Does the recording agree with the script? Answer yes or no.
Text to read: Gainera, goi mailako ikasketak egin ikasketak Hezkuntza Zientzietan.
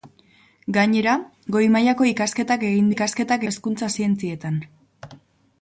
yes